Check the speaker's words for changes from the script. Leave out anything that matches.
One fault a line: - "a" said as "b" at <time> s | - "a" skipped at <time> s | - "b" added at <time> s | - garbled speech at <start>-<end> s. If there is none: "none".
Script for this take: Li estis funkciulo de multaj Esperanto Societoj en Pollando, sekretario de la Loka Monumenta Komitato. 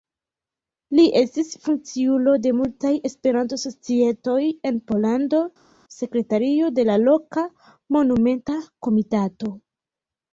none